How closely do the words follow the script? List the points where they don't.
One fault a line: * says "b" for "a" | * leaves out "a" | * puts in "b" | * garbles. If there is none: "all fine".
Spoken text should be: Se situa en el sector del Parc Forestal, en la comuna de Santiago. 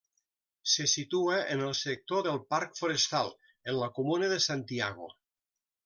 all fine